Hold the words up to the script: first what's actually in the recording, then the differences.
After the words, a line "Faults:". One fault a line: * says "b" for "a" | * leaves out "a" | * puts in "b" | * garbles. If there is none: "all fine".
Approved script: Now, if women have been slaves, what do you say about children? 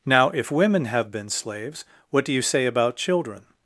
Now, if women have been slaves, what do you say about children?
Faults:
all fine